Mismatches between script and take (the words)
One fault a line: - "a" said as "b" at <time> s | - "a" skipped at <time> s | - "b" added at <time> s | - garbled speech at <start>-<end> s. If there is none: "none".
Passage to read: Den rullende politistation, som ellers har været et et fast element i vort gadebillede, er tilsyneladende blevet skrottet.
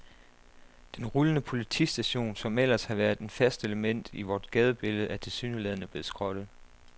- "et" skipped at 3.3 s